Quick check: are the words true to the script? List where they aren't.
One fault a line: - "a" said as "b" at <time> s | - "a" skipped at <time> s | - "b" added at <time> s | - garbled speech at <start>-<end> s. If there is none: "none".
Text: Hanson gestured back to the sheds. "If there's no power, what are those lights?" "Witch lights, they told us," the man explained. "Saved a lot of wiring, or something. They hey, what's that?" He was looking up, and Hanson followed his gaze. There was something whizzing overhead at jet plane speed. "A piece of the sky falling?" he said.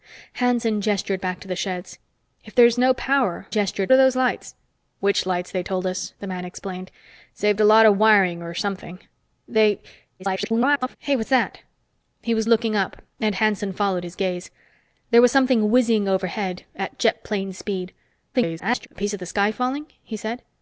- "what" said as "gestured" at 3.5 s
- garbled speech at 10.2-11.0 s
- garbled speech at 18.3-18.9 s